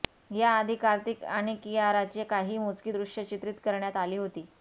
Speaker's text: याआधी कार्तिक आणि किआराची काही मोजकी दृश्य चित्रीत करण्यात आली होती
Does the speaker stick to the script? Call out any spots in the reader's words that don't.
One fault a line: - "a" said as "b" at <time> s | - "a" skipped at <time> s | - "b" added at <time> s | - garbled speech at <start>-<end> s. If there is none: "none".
none